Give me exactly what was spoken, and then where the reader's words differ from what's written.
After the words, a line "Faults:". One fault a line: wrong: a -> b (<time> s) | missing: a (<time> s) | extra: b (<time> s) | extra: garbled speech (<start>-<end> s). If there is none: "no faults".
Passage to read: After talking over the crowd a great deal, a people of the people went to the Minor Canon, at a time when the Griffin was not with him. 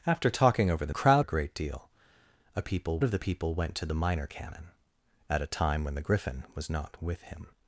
After talking over the crowd a great deal, a people of the people went to the Minor Canon, at a time when the Griffin was not with him.
Faults:
no faults